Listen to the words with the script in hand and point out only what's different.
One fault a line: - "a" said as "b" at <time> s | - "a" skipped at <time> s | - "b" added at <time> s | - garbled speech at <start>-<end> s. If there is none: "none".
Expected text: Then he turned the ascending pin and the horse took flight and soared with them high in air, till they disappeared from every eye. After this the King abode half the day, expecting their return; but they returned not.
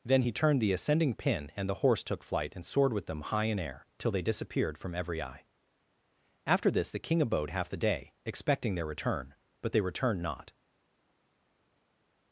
none